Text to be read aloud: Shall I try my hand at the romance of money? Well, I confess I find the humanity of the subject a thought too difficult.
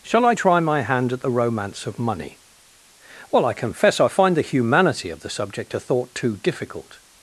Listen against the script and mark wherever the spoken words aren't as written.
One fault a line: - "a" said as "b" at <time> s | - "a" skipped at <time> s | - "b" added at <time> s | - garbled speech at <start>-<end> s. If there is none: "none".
none